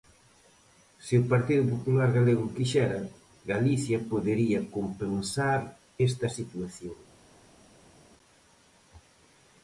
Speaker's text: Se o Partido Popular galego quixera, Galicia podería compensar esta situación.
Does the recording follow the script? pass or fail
pass